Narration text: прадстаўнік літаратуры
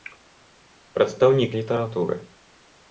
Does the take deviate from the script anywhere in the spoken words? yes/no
no